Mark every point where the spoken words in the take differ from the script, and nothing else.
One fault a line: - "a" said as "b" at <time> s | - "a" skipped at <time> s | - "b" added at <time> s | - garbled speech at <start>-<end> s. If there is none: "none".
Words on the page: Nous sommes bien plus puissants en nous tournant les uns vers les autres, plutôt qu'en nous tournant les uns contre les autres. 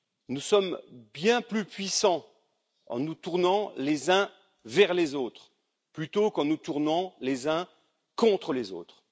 none